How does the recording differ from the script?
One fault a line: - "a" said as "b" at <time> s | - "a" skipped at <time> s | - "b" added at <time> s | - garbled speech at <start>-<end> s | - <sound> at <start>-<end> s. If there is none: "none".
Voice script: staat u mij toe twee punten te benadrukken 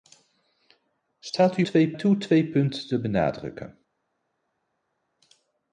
- "mij" said as "twee" at 1.6 s